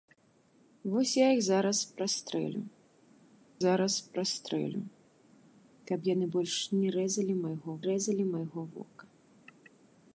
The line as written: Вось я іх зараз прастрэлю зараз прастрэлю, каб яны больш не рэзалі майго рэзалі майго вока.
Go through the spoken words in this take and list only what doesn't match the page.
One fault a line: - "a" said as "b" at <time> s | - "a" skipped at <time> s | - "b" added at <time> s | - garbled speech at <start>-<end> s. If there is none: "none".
none